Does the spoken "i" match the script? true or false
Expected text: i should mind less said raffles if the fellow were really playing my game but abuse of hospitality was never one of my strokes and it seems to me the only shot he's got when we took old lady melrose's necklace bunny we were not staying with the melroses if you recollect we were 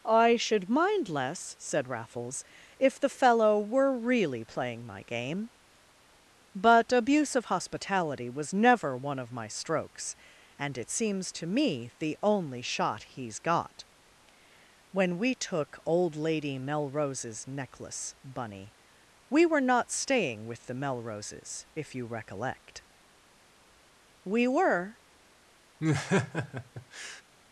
true